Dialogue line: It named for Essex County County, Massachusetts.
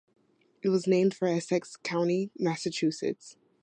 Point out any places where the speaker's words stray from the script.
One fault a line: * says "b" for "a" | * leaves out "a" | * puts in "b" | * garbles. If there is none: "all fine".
* puts in "was"
* leaves out "County"